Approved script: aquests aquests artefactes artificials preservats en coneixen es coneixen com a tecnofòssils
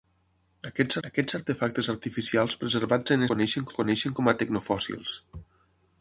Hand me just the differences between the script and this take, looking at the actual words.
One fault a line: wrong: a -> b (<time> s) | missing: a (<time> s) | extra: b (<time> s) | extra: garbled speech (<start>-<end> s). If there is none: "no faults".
no faults